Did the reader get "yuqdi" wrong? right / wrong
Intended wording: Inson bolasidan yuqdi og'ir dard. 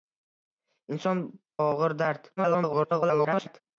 wrong